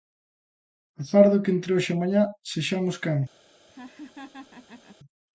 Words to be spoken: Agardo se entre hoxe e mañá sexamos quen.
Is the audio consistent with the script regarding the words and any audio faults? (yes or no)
no